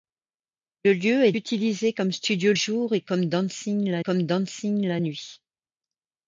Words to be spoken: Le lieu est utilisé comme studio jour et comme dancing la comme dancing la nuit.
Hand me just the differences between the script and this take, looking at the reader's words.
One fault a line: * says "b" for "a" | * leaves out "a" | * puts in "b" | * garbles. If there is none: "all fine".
all fine